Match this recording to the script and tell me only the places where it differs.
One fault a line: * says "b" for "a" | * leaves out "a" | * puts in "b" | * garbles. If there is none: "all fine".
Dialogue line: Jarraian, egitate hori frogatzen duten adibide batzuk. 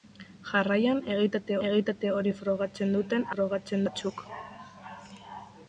* puts in "egitate"
* says "frogatzen" for "adibide"